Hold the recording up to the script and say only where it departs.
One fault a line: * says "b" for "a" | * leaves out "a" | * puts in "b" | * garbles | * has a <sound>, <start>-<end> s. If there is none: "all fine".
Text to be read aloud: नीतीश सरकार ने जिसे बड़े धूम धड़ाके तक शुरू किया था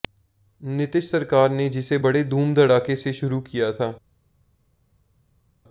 * says "से" for "तक"